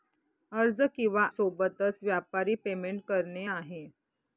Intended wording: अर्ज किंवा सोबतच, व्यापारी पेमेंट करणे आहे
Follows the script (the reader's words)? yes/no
yes